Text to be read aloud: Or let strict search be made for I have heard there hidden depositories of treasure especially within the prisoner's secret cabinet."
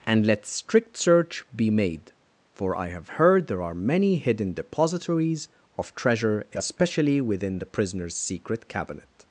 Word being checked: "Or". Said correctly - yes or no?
no